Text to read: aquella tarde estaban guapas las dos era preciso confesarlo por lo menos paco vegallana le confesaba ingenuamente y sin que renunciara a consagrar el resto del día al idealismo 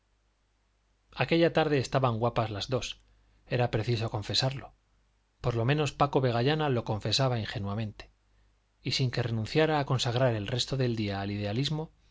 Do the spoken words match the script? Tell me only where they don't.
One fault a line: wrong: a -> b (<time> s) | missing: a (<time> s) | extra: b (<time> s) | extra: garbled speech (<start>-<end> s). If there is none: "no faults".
wrong: le -> lo (6.7 s)